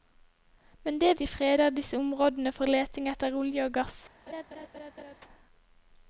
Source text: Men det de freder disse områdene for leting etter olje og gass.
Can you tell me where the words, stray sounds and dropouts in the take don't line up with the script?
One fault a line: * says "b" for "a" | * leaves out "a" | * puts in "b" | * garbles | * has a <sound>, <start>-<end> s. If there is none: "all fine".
* has a laugh, 4.3-5.2 s